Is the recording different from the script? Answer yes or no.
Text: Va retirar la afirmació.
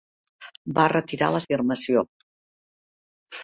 no